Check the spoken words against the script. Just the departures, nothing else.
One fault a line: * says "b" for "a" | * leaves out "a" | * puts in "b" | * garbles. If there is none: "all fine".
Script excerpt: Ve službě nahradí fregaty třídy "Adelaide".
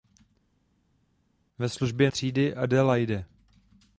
* leaves out "nahradí fregaty"